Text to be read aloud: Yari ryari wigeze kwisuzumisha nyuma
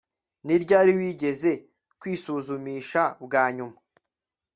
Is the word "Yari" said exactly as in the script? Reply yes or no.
no